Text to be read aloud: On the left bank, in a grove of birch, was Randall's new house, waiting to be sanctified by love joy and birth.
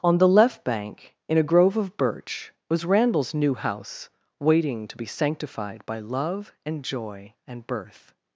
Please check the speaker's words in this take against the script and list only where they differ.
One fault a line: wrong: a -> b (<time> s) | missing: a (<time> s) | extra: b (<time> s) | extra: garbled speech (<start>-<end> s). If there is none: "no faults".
extra: and (6.7 s)